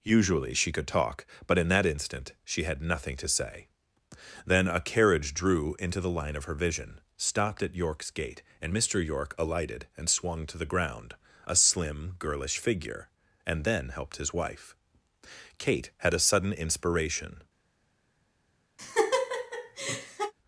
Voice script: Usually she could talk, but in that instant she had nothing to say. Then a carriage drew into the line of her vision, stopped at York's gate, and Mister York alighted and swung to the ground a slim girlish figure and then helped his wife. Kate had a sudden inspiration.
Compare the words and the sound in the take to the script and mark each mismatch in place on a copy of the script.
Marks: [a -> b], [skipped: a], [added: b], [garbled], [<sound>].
Usually she could talk, but in that instant she had nothing to say. Then a carriage drew into the line of her vision, stopped at York's gate, and Mister York alighted and swung to the ground a slim girlish figure and then helped his wife. Kate had a sudden inspiration. [laugh]